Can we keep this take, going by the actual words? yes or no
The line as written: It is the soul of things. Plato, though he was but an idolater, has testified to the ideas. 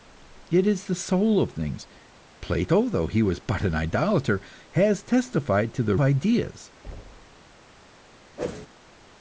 yes